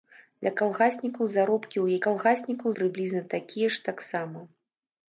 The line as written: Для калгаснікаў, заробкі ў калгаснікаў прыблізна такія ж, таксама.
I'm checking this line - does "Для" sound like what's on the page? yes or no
yes